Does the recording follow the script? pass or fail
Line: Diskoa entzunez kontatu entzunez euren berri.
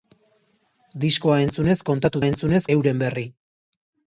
pass